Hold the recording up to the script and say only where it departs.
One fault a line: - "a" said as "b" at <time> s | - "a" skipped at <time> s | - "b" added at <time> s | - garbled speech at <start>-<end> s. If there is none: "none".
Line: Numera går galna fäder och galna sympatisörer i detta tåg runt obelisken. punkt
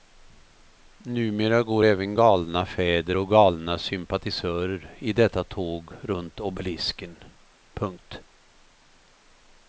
- "även" added at 1.8 s